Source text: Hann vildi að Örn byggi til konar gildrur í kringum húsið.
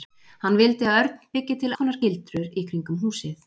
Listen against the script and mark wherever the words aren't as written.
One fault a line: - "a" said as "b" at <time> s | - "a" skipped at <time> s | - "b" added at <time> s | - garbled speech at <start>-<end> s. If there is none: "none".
none